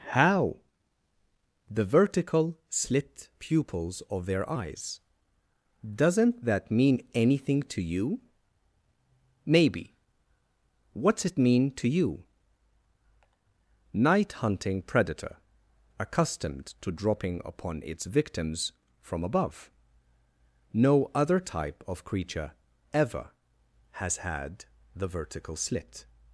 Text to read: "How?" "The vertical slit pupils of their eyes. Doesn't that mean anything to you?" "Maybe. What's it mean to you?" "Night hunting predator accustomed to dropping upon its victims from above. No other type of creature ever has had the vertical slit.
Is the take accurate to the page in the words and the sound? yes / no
yes